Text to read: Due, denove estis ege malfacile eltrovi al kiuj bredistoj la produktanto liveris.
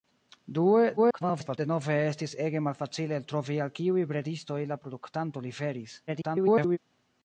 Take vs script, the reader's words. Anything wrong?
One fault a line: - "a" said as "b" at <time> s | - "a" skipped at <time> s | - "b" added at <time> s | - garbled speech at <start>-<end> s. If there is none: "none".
- garbled speech at 1.0-1.6 s
- garbled speech at 6.1-6.8 s